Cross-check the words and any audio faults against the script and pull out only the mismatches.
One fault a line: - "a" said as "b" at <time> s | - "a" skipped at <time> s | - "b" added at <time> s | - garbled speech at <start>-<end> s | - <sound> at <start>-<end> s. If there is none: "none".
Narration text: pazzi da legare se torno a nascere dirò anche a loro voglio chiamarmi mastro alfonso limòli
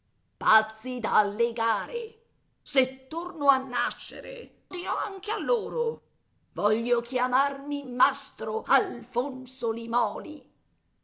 none